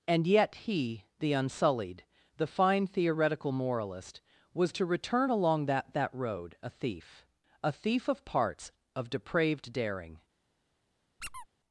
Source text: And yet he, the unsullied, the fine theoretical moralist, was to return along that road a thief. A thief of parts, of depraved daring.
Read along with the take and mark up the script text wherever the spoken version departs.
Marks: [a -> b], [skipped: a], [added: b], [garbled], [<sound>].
And yet he, the unsullied, the fine theoretical moralist, was to return along that [added: that] road a thief. A thief of parts, of depraved daring. [squeak]